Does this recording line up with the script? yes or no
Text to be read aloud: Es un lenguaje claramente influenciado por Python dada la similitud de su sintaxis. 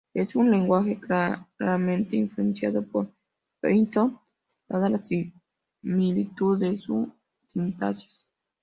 yes